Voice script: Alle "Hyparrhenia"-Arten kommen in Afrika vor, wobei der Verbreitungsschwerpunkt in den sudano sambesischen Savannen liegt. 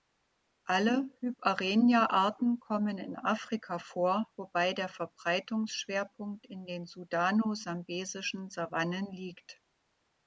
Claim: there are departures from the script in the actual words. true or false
false